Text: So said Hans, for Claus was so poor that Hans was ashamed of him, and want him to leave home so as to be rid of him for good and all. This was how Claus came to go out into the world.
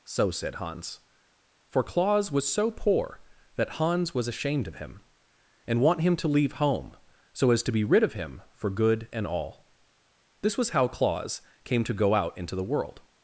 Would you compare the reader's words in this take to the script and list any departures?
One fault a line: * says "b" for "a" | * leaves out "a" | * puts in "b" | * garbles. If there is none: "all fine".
all fine